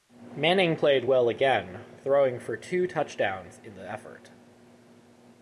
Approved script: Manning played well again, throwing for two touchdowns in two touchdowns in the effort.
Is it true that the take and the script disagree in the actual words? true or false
true